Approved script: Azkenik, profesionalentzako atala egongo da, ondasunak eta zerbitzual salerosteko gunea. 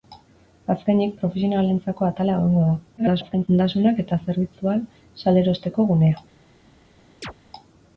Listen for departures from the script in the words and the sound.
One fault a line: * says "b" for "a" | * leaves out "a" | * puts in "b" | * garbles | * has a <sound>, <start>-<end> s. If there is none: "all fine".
* garbles
* has a chirp, 7.2-7.3 s